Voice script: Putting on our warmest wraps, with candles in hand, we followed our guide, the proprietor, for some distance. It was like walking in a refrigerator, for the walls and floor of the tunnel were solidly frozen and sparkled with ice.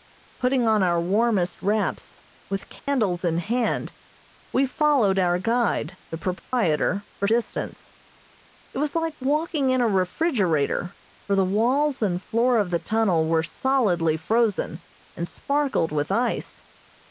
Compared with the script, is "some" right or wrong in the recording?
wrong